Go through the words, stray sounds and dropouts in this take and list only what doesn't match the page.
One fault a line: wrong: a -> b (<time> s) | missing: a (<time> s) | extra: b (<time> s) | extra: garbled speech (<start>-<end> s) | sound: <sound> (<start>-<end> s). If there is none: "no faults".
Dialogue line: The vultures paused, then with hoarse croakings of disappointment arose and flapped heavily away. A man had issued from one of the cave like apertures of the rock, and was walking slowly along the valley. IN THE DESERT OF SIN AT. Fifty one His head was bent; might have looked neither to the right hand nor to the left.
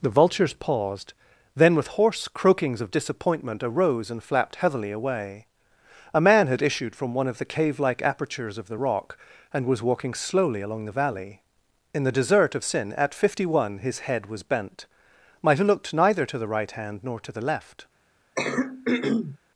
sound: throat clearing (18.4-19.4 s)